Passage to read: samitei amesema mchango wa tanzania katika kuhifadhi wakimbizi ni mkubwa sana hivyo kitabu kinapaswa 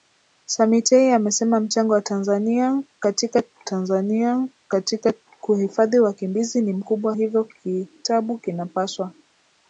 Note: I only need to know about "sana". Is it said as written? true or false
false